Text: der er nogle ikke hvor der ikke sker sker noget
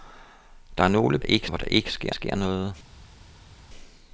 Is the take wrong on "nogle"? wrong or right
right